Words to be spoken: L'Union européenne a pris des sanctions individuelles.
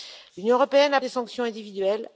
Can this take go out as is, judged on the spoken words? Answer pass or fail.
fail